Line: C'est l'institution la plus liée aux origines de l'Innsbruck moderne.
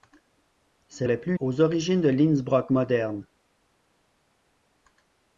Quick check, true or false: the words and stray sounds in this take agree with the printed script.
false